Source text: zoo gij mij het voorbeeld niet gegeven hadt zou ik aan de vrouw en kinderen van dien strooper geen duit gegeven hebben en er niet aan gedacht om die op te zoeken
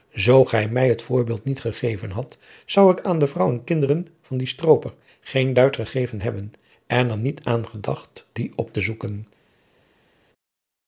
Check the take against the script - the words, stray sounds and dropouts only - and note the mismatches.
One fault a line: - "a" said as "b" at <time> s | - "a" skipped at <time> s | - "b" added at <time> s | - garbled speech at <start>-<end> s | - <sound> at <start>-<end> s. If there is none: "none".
- "om" skipped at 8.2 s